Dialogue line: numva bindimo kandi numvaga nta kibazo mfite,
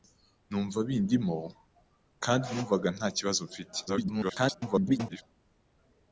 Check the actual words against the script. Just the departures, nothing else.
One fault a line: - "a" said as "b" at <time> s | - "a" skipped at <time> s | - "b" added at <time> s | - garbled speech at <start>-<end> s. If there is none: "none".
- garbled speech at 3.9-5.2 s